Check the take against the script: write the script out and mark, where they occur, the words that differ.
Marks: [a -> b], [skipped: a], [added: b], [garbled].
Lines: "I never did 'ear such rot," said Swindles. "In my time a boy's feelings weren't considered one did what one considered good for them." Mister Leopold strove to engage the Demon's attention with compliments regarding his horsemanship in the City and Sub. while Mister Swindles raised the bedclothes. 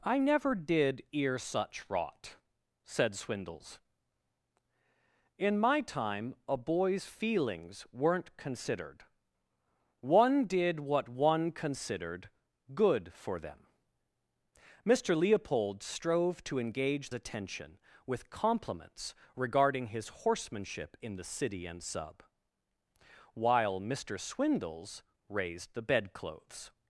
"I never did 'ear such rot," said Swindles. "In my time a boy's feelings weren't considered one did what one considered good for them." Mister Leopold strove to engage [skipped: the Demon's] attention with compliments regarding his horsemanship in the City and Sub. while Mister Swindles raised the bedclothes.